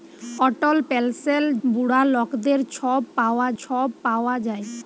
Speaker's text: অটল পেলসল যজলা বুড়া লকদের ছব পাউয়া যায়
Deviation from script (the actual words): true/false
true